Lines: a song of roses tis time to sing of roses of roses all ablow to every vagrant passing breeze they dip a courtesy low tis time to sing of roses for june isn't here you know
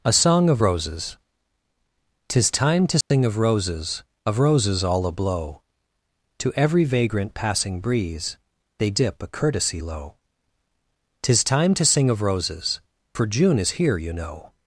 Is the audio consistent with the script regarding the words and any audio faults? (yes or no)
no